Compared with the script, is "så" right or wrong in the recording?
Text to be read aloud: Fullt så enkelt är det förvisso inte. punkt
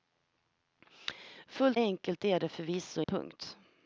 wrong